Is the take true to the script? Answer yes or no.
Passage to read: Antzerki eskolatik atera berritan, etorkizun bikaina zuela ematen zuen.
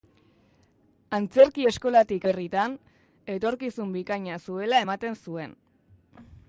no